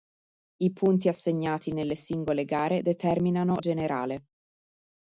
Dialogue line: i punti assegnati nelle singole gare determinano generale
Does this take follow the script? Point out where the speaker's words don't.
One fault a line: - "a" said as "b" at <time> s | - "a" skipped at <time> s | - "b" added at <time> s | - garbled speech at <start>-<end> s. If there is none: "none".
none